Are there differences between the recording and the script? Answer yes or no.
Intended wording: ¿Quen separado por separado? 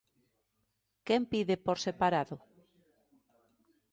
yes